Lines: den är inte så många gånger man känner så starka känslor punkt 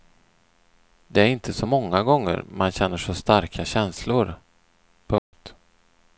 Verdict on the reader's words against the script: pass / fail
fail